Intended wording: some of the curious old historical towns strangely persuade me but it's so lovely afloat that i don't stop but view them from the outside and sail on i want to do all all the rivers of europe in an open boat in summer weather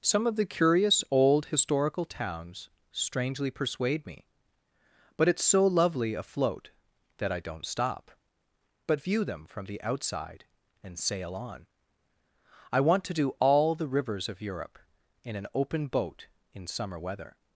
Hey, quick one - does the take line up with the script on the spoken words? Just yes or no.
no